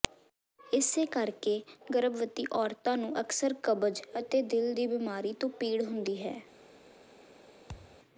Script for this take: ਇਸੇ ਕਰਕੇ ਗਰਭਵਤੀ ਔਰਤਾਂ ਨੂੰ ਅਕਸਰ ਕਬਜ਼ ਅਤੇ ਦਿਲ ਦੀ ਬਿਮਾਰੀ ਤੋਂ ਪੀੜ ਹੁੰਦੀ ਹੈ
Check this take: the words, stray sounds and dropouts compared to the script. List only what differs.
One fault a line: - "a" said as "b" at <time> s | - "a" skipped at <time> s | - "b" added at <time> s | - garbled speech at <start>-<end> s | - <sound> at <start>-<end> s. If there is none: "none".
- thud at 7.7-8.0 s